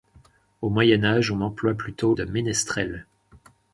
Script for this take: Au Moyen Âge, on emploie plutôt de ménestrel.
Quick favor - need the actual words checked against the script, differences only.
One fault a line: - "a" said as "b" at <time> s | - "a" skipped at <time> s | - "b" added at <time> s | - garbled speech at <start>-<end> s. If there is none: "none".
none